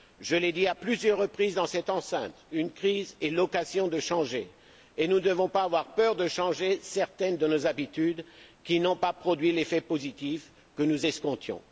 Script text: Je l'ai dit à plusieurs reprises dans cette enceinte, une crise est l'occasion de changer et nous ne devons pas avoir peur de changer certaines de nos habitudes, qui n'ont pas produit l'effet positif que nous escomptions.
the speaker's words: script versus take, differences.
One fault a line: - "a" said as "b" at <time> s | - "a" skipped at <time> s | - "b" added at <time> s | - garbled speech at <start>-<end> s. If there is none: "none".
none